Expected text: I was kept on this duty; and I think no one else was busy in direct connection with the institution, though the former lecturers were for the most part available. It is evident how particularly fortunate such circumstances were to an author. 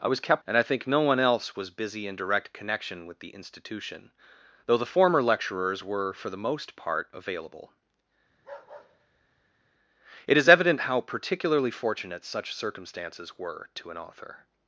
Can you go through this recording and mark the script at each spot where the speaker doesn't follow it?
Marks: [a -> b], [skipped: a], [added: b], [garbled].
I was kept [skipped: on this duty;] and I think no one else was busy in direct connection with the institution, though the former lecturers were for the most part available. It is evident how particularly fortunate such circumstances were to an author.